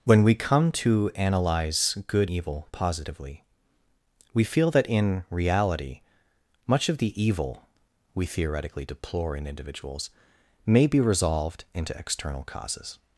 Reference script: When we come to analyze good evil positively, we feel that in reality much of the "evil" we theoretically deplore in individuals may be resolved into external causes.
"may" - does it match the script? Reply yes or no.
yes